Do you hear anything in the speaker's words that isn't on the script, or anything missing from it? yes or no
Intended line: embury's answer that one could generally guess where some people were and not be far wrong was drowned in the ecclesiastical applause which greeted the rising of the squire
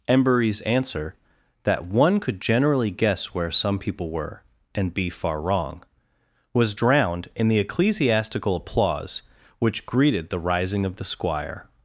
yes